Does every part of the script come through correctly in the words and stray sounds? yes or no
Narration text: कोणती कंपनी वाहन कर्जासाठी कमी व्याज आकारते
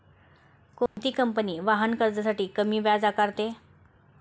no